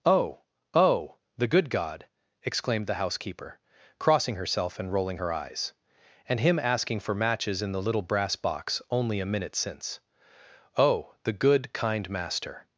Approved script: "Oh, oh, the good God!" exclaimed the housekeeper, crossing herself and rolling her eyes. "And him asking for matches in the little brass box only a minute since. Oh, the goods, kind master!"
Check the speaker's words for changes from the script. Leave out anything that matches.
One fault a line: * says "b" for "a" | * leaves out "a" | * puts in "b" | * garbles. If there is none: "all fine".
* says "good" for "goods"